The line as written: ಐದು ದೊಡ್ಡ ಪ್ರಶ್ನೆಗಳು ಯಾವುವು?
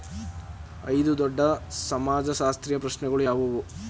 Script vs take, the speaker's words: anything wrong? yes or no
yes